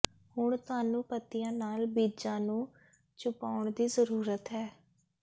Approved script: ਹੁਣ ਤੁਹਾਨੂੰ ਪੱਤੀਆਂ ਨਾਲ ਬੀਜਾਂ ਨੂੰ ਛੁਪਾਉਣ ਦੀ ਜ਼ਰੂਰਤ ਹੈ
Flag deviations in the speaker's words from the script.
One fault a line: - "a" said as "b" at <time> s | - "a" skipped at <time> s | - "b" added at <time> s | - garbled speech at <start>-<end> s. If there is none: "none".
none